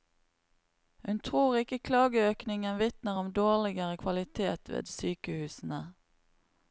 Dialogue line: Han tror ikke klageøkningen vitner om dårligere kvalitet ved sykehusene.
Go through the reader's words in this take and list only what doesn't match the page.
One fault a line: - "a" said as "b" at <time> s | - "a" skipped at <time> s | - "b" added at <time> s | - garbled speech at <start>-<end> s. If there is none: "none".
- "Han" said as "Hun" at 1.1 s